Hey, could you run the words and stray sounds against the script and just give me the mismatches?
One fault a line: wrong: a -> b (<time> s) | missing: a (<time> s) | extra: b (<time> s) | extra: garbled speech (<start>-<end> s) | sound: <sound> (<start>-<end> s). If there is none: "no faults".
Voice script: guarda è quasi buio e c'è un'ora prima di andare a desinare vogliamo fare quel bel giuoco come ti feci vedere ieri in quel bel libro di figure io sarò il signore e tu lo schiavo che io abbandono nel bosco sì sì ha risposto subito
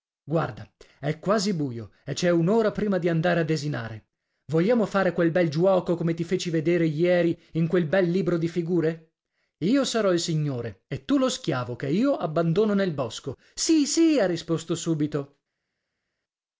no faults